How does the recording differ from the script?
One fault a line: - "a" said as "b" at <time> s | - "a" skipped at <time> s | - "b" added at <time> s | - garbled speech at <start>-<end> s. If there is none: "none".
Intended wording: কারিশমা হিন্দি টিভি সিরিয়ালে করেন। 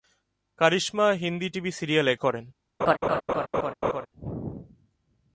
none